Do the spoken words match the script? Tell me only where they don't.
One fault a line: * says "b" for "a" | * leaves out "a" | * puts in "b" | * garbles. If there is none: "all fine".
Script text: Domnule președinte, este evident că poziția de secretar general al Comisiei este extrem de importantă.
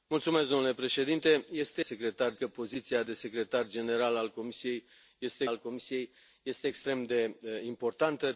* says "secretar" for "evident"
* puts in "al Comisiei este"